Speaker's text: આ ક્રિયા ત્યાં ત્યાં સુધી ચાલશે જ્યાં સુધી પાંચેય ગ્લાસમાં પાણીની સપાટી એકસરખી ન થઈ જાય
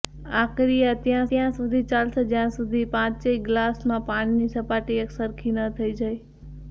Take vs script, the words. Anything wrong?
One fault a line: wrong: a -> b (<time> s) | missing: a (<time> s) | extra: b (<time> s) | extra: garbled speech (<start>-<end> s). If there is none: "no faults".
no faults